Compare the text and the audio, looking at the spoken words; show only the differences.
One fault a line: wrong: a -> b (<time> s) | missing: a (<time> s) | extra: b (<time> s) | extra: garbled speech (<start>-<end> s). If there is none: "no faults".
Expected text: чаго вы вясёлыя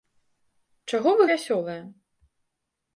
no faults